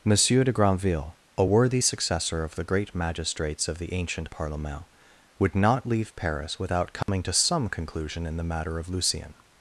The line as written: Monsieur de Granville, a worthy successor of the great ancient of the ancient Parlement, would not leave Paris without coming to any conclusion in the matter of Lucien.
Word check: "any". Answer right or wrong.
wrong